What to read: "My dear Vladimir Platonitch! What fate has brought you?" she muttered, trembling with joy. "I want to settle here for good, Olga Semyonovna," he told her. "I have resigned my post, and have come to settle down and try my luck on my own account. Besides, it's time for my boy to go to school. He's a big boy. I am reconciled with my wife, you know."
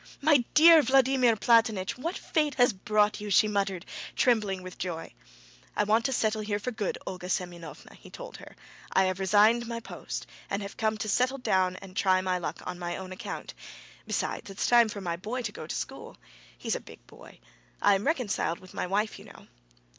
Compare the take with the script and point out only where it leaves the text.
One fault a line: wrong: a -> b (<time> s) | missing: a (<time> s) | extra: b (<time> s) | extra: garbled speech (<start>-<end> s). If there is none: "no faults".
no faults